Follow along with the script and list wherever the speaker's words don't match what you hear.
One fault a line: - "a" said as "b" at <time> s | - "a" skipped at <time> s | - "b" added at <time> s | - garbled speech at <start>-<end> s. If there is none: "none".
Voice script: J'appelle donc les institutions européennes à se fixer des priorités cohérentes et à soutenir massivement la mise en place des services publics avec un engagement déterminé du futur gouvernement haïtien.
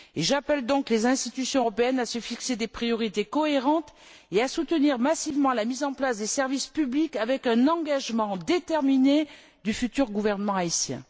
none